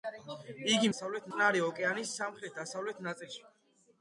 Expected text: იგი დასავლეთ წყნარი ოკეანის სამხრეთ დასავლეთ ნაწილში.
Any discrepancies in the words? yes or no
no